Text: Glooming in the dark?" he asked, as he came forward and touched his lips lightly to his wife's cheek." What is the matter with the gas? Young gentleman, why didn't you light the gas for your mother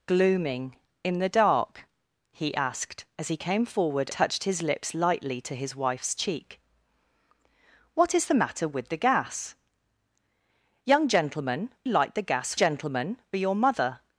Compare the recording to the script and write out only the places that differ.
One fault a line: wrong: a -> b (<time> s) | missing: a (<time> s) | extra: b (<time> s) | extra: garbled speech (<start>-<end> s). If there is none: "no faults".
missing: and (4.1 s)
missing: why didn't you (11.7 s)
wrong: for -> gentleman (12.5 s)